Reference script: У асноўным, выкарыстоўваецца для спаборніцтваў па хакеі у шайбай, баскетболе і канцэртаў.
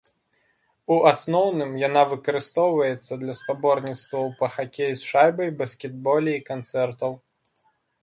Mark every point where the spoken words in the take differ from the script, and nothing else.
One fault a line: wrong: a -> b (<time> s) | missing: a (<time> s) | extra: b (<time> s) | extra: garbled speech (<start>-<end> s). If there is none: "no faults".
extra: яна (1.9 s)
wrong: у -> з (5.0 s)